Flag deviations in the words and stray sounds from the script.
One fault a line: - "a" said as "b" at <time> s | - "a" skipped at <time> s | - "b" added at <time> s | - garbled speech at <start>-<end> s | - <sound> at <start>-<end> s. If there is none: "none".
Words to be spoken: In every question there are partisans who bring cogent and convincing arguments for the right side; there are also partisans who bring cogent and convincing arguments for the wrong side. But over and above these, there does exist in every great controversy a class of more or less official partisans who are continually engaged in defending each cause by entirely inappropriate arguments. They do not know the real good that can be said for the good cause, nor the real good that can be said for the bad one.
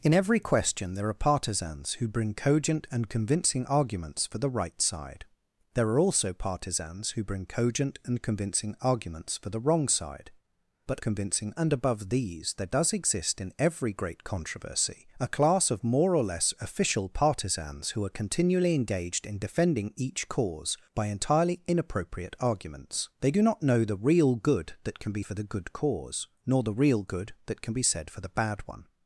- "over" said as "convincing" at 11.0 s
- "said" skipped at 25.2 s